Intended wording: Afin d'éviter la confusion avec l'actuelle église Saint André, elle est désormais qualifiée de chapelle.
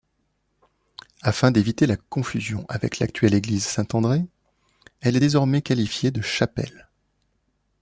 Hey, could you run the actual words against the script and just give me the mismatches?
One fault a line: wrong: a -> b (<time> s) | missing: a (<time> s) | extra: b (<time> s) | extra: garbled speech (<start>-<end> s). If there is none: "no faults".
no faults